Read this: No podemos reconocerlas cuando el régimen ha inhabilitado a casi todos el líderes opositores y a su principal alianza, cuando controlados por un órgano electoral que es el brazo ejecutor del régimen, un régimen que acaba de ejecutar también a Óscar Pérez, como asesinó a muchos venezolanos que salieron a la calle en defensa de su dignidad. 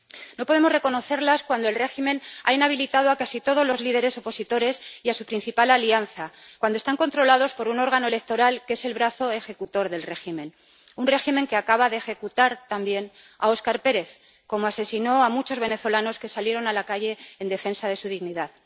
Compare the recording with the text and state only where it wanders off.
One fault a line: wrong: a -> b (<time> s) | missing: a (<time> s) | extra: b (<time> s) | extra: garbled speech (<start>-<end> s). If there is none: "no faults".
wrong: el -> los (3.6 s)
extra: están (6.8 s)